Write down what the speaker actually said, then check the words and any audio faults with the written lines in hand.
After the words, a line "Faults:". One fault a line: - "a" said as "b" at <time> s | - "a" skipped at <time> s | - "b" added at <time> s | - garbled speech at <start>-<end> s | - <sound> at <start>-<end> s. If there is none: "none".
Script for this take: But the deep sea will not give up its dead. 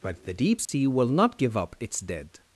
But the deep sea will not give up its dead.
Faults:
- dropout at 0.7-0.7 s